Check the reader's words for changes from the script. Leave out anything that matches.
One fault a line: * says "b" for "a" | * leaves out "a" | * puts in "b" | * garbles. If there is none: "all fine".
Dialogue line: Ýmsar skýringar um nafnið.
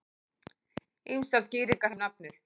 all fine